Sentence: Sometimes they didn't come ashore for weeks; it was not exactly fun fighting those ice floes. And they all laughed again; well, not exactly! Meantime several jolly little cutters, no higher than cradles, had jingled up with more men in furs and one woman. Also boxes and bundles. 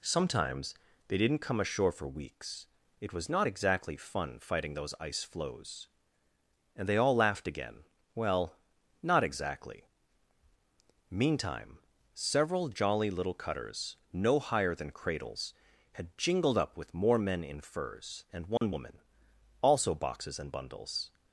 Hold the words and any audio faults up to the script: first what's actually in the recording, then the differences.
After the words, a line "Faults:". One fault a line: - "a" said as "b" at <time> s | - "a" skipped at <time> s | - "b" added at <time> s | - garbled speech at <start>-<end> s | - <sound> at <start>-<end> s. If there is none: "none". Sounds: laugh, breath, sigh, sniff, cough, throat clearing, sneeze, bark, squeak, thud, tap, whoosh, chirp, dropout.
Sometimes they didn't come ashore for weeks; it was not exactly fun fighting those ice floes. And they all laughed again; well, not exactly! Meantime several jolly little cutters, no higher than cradles, had jingled up with more men in furs and one woman. Also boxes and bundles.
Faults:
- dropout at 18.6-18.6 s